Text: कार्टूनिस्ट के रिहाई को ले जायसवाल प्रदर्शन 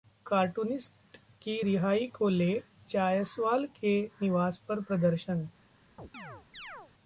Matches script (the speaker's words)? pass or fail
fail